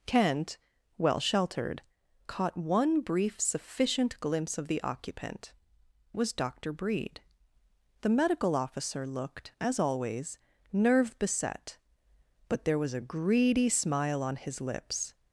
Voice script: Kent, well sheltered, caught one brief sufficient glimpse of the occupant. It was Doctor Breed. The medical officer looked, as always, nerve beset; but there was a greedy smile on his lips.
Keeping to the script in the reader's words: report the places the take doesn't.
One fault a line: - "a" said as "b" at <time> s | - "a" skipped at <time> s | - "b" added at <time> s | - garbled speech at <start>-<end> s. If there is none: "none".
- "It" skipped at 5.5 s